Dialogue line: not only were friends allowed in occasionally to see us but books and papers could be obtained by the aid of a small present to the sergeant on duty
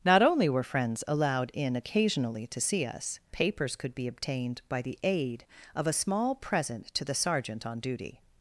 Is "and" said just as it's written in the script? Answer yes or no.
no